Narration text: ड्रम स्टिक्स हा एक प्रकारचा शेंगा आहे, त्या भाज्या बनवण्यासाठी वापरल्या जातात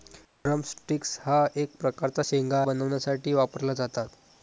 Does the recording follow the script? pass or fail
fail